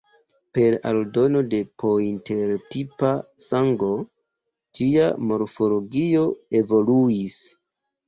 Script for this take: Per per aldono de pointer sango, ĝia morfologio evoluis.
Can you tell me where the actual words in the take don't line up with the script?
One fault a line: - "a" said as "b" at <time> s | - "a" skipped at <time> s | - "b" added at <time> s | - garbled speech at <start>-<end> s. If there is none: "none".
- "per" skipped at 0.8 s
- "tipa" added at 2.7 s